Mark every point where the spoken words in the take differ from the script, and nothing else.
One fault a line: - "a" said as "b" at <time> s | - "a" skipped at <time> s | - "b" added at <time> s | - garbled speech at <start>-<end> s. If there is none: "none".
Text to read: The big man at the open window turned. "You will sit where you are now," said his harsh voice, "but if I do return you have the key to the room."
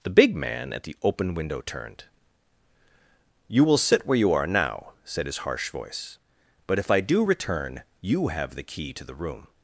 none